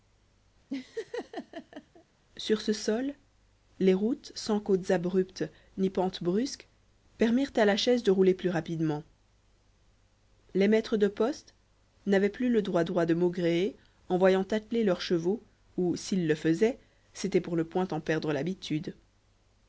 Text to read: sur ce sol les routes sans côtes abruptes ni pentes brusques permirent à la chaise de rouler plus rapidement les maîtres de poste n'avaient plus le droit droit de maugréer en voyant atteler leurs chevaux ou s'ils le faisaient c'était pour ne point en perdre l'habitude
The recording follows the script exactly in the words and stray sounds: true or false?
false